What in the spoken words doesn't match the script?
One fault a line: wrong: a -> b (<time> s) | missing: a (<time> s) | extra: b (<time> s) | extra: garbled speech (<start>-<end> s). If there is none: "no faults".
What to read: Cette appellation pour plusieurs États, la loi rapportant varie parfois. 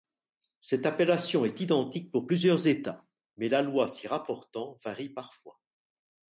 extra: est identique (1.4 s)
extra: mais (3.4 s)
extra: s'y (3.9 s)